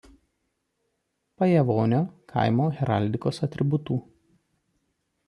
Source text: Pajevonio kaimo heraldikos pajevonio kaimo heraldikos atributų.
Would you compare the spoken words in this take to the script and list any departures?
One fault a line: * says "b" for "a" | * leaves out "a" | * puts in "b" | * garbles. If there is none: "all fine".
* leaves out "pajevonio kaimo heraldikos"